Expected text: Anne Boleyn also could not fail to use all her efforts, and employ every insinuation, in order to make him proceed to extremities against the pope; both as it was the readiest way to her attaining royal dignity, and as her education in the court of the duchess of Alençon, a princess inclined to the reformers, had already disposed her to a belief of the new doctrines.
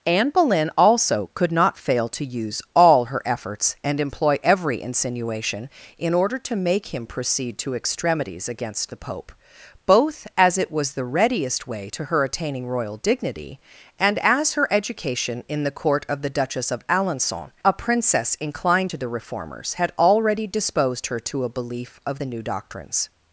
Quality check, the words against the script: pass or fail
pass